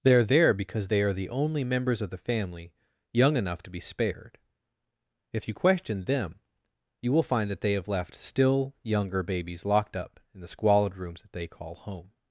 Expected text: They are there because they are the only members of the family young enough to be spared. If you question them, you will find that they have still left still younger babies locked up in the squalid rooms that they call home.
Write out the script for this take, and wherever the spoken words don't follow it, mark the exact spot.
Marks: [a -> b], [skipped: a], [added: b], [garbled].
They are there because they are the only members of the family young enough to be spared. If you question them, you will find that they have [skipped: still] left still younger babies locked up in the squalid rooms that they call home.